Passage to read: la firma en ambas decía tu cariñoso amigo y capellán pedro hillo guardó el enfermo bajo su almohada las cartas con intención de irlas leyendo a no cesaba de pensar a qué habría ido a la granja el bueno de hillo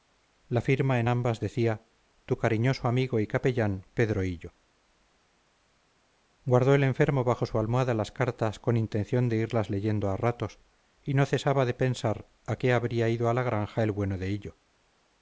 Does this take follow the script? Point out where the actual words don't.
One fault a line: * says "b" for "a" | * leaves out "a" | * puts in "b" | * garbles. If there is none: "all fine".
* puts in "ratos y"